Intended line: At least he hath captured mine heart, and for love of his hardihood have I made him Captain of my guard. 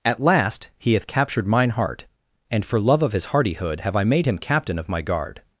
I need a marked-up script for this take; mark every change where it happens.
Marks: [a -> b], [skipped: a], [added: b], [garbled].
At [least -> last] he hath captured mine heart, and for love of his hardihood have I made him Captain of my guard.